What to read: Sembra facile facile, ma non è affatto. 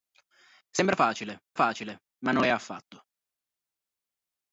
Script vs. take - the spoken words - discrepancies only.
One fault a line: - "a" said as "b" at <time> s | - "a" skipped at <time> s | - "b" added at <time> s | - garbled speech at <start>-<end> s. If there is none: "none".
none